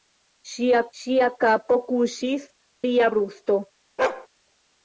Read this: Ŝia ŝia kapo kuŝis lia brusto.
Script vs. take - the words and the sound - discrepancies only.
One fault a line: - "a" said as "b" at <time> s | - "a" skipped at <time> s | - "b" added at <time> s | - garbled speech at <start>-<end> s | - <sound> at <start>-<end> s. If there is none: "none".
- bark at 4.0-4.3 s